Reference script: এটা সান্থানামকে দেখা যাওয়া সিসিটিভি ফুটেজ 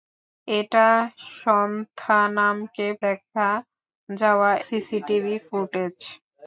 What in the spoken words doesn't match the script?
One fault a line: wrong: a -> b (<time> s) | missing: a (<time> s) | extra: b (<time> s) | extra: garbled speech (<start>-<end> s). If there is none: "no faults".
no faults